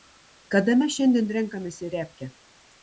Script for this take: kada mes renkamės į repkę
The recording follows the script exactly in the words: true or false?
false